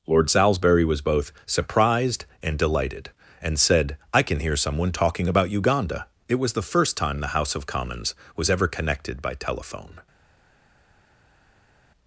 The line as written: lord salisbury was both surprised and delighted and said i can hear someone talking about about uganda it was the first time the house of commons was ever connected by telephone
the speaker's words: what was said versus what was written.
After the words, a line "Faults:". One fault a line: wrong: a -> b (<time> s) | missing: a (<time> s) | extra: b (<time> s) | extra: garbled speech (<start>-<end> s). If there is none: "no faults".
lord salisbury was both surprised and delighted and said i can hear someone talking about uganda it was the first time the house of commons was ever connected by telephone
Faults:
missing: about (5.5 s)